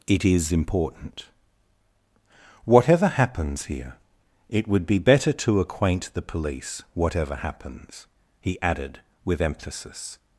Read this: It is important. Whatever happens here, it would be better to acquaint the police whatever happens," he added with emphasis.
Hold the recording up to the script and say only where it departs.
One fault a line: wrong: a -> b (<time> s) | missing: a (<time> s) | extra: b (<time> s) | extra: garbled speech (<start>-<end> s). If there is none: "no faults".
no faults